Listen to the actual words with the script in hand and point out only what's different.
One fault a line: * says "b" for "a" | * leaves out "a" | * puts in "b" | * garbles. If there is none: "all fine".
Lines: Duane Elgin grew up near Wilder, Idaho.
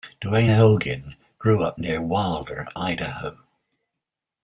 all fine